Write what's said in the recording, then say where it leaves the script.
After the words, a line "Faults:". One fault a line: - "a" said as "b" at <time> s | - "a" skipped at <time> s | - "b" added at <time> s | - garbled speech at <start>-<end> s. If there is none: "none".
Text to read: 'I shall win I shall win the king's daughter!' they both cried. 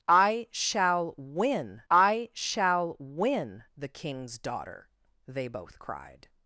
'I shall win I shall win the king's daughter!' they both cried.
Faults:
none